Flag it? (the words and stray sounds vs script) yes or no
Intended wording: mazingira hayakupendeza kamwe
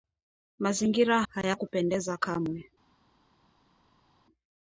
no